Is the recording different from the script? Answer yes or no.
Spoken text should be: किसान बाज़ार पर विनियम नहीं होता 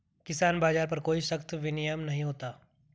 yes